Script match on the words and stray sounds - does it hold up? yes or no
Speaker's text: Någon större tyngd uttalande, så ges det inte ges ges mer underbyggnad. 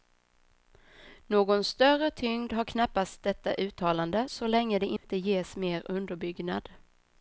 no